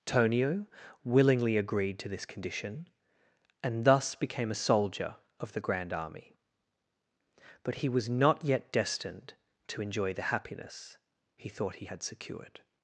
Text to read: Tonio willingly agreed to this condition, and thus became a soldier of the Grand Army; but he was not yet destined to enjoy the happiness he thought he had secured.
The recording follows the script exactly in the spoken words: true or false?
true